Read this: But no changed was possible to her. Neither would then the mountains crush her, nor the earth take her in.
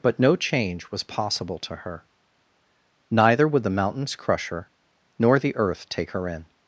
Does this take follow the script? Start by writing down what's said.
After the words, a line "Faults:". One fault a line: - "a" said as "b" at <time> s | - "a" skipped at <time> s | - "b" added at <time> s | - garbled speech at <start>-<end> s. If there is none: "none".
But no change was possible to her. Neither would the mountains crush her, nor the earth take her in.
Faults:
- "changed" said as "change" at 0.3 s
- "then" skipped at 3.6 s